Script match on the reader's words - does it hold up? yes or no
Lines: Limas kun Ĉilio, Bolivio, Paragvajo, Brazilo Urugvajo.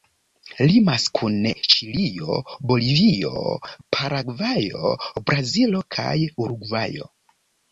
no